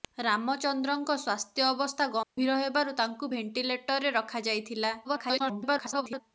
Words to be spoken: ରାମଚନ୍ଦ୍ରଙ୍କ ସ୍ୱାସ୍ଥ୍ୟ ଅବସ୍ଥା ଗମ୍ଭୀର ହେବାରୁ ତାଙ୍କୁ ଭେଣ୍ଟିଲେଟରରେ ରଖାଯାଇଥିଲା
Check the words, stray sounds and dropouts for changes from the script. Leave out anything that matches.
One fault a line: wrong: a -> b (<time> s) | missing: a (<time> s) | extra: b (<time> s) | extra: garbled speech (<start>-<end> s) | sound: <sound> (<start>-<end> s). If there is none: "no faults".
sound: dropout (2.2-2.4 s)
extra: garbled speech (5.0-6.2 s)